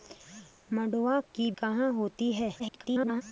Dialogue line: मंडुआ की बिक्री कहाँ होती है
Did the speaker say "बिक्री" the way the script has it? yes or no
no